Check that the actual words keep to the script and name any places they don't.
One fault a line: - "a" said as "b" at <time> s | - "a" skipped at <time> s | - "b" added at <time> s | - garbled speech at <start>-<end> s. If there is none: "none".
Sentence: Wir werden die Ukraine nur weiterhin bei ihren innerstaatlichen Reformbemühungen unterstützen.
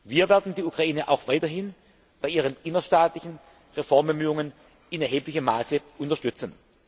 - "nur" said as "auch" at 1.1 s
- "in erheblichem Maße" added at 4.9 s